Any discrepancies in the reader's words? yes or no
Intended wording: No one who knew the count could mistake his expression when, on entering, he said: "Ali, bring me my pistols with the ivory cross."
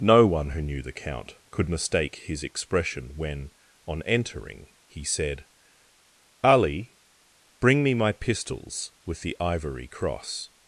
no